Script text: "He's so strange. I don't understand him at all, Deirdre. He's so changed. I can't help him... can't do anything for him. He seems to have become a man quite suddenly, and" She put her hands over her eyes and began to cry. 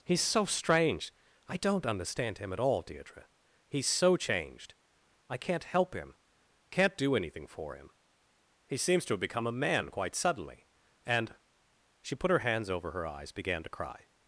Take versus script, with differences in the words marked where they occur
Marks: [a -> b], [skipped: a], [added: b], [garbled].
"He's so strange. I don't understand him at all, Deirdre. He's so changed. I can't help him... can't do anything for him. He seems to have become a man quite suddenly, and" She put her hands over her eyes [skipped: and] began to cry.